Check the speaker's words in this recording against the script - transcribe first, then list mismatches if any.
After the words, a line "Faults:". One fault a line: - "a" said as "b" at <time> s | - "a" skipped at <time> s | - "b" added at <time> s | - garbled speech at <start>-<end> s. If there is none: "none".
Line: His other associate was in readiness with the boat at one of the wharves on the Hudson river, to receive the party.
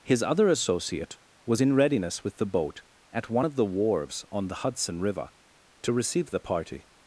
His other associate was in readiness with the boat at one of the wharves on the Hudson river, to receive the party.
Faults:
none